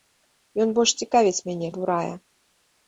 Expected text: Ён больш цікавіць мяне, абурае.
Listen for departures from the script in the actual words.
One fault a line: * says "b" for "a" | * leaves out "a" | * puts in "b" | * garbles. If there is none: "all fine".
all fine